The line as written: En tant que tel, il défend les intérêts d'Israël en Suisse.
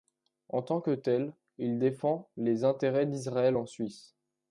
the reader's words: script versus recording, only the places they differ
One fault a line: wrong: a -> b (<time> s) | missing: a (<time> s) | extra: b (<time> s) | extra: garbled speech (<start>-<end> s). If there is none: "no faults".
no faults